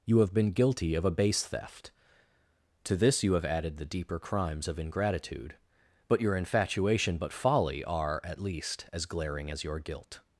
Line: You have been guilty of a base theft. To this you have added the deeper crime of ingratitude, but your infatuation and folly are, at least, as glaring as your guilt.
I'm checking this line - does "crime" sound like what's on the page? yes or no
no